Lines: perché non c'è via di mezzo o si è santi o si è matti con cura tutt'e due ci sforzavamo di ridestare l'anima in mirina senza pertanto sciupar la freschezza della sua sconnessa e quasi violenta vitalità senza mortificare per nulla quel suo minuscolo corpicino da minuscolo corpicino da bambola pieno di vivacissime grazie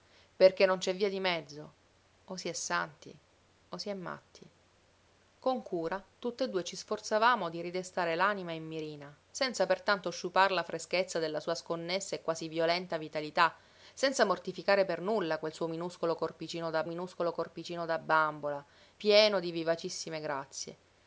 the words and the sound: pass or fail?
pass